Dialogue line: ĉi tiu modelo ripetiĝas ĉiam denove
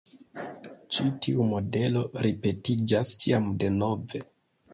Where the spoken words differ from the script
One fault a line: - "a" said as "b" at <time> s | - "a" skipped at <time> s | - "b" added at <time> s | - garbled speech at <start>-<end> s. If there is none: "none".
none